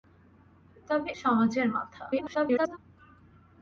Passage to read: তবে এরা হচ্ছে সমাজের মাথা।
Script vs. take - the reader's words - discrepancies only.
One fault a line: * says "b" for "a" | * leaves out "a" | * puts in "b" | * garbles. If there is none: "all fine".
* leaves out "এরা হচ্ছে"
* garbles